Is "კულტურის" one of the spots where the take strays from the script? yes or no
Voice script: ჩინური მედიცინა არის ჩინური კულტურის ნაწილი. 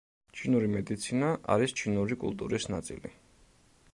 no